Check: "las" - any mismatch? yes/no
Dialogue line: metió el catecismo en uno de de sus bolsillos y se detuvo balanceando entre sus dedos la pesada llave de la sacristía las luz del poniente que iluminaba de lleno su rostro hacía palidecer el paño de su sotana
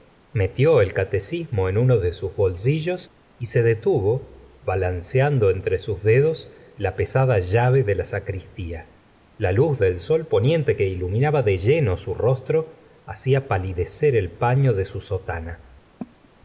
yes